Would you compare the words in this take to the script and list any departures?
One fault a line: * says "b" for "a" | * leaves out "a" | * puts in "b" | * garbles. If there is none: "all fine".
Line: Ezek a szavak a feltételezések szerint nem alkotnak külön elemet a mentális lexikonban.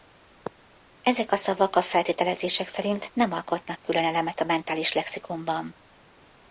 all fine